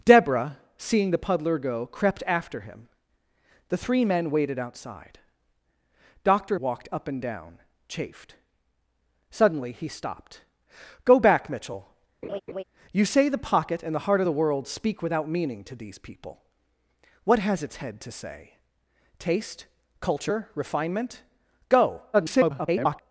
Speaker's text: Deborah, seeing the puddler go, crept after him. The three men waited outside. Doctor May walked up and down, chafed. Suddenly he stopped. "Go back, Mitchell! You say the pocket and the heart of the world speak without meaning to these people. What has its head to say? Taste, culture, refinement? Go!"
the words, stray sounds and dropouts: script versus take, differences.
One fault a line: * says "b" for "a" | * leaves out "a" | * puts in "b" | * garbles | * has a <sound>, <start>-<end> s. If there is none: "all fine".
* leaves out "May"
* has a laugh, 12.2-12.6 s
* garbles